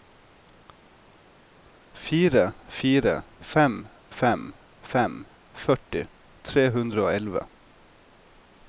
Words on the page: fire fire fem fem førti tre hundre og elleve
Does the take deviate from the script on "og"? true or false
false